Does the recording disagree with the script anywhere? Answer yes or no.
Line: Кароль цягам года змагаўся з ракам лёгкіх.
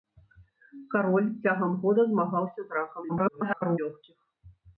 yes